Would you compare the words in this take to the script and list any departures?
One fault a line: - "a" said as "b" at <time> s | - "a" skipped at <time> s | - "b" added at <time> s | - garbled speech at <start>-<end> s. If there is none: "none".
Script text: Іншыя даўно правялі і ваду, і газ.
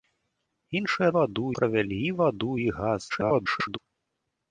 - "даўно" said as "ваду" at 1.2 s
- garbled speech at 3.1-3.8 s